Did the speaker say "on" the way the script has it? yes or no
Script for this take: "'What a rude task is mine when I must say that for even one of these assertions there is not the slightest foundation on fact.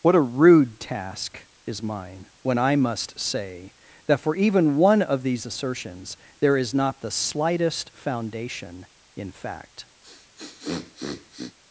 no